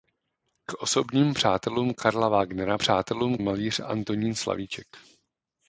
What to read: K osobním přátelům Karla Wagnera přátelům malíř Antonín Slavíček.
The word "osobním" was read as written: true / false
true